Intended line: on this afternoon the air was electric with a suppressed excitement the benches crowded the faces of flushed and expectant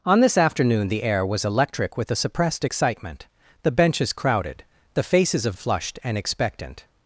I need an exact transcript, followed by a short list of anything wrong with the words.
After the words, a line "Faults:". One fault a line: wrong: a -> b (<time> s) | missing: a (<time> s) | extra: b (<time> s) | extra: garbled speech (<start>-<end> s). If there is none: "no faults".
on this afternoon the air was electric with a suppressed excitement the benches crowded the faces of flushed and expectant
Faults:
no faults